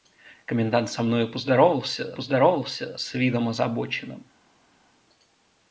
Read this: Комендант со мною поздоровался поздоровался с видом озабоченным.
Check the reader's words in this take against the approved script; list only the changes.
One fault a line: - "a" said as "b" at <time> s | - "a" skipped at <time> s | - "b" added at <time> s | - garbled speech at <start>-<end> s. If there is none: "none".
none